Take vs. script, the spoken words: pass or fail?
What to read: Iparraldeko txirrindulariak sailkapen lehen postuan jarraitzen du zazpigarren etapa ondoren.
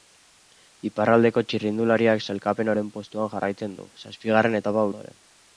pass